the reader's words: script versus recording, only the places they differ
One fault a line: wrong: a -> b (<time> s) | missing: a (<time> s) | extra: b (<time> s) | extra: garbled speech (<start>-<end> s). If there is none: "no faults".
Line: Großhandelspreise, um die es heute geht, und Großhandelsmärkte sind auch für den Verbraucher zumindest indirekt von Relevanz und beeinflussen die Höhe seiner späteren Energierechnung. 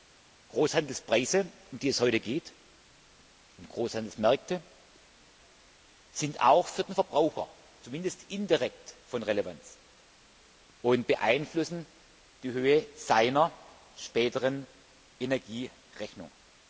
no faults